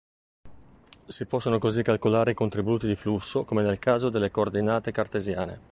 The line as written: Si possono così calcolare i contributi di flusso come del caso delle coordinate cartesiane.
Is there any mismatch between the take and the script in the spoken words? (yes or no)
yes